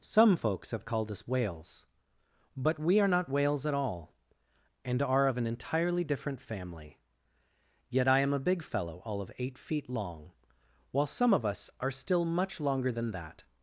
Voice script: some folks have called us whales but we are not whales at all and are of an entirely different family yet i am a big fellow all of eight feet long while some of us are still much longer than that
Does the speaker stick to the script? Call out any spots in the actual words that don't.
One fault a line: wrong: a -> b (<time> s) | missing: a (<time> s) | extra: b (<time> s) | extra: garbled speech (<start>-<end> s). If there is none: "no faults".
no faults